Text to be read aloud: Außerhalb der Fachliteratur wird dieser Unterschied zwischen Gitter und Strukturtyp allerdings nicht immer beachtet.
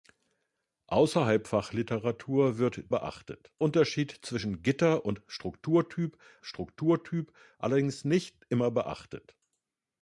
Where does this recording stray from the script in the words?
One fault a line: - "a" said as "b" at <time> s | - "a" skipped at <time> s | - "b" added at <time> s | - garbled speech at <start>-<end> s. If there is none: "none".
- "der" skipped at 1.4 s
- "dieser" said as "beachtet" at 2.9 s
- "Strukturtyp" added at 6.4 s